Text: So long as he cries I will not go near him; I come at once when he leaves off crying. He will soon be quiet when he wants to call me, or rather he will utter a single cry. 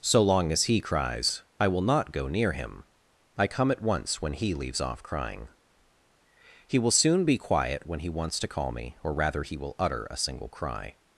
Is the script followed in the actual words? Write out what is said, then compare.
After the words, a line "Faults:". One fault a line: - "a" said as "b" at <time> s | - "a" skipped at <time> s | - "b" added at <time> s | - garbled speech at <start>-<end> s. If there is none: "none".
So long as he cries I will not go near him; I come at once when he leaves off crying. He will soon be quiet when he wants to call me, or rather he will utter a single cry.
Faults:
none